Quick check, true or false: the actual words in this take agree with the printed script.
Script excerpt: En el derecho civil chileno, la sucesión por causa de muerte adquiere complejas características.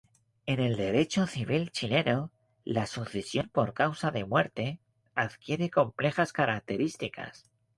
true